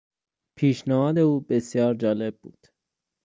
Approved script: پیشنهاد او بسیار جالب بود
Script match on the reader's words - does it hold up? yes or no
yes